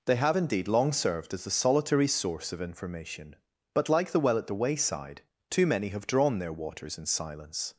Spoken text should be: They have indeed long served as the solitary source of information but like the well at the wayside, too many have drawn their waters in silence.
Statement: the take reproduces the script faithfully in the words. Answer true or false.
true